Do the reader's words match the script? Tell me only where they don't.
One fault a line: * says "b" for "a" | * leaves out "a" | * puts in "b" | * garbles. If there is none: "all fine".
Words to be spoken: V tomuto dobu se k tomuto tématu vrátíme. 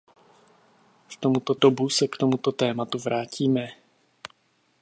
all fine